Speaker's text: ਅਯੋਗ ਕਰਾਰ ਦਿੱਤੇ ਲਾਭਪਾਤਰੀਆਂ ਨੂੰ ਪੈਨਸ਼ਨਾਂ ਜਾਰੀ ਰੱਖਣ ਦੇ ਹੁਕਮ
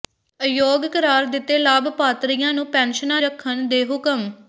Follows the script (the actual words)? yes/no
no